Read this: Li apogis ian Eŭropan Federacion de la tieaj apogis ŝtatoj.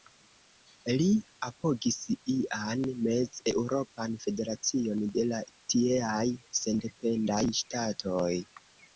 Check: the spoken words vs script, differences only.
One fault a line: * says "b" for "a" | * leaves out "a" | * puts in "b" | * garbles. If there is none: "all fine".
* puts in "Mez"
* says "sendependaj" for "apogis"